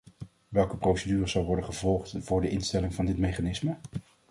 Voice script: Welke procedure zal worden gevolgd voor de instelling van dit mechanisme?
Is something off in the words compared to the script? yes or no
no